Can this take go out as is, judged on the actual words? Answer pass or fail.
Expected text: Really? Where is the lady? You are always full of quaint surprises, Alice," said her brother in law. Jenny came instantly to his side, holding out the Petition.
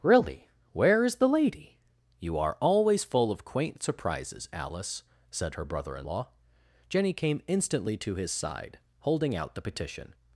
pass